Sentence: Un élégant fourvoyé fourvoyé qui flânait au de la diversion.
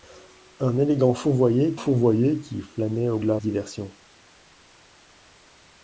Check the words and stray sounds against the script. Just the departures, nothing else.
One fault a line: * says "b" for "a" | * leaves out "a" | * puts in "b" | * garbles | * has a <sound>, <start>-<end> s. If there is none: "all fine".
all fine